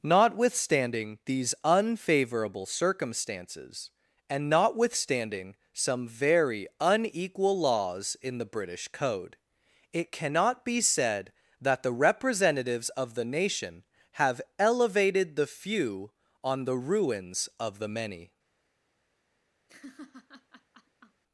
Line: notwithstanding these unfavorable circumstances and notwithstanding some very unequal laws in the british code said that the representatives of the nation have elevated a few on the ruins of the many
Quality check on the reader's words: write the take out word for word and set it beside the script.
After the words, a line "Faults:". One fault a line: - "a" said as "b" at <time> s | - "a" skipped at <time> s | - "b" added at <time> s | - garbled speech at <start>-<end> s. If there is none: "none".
notwithstanding these unfavorable circumstances and notwithstanding some very unequal laws in the british code it cannot be said that the representatives of the nation have elevated the few on the ruins of the many
Faults:
- "it cannot be" added at 9.9 s
- "a" said as "the" at 15.3 s